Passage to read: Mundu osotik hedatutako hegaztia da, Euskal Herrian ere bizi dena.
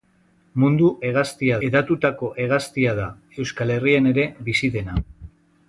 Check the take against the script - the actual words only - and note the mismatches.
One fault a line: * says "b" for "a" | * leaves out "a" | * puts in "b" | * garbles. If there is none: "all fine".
* says "hegaztia" for "osotik"